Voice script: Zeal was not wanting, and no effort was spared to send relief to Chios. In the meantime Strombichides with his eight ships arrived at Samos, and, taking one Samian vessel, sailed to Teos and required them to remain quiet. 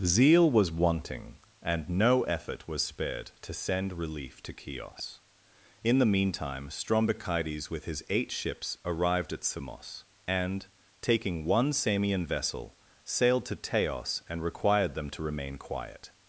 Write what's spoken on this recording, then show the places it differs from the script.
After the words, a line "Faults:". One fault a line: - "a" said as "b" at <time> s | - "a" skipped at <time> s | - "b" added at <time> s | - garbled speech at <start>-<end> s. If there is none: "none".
Zeal was wanting, and no effort was spared to send relief to Chios. In the meantime Strombichides with his eight ships arrived at Samos, and, taking one Samian vessel, sailed to Teos and required them to remain quiet.
Faults:
- "not" skipped at 0.7 s